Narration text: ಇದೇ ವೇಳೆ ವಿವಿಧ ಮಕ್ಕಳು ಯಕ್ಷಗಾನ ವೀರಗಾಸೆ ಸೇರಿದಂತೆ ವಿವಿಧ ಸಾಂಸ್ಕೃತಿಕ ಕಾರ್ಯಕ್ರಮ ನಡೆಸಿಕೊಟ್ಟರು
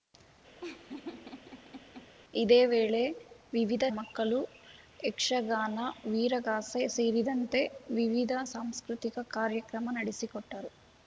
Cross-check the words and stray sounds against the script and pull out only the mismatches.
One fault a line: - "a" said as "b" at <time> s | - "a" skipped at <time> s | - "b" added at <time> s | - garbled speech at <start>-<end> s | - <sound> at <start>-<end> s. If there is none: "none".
- laugh at 0.6-2.1 s